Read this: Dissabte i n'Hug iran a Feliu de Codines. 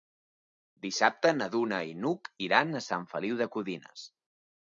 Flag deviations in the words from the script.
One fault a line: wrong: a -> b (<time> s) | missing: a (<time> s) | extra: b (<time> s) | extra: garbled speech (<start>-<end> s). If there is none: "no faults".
extra: na Duna (1.4 s)
extra: Sant (2.9 s)